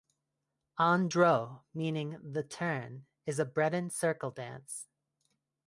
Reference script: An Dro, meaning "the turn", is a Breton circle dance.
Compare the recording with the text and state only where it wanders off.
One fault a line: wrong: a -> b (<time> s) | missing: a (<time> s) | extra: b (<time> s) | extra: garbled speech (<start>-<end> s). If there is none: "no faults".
no faults